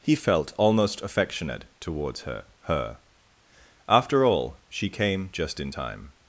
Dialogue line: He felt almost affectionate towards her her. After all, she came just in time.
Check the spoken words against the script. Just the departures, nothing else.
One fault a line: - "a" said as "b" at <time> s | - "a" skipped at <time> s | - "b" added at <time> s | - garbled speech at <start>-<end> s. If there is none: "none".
none